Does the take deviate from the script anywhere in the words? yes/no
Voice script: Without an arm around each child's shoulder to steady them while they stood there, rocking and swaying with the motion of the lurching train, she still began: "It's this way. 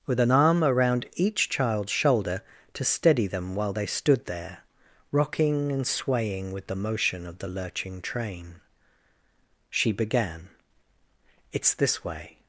yes